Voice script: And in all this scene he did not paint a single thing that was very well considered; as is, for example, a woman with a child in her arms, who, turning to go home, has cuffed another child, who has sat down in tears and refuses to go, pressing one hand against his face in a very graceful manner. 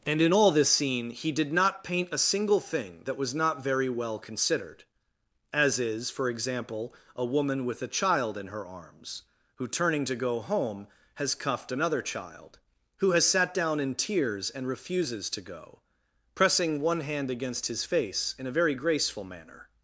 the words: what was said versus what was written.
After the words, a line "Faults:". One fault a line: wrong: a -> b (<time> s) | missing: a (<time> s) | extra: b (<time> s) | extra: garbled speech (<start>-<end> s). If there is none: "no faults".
And in all this scene he did not paint a single thing that was not very well considered; as is, for example, a woman with a child in her arms, who, turning to go home, has cuffed another child, who has sat down in tears and refuses to go, pressing one hand against his face in a very graceful manner.
Faults:
extra: not (3.3 s)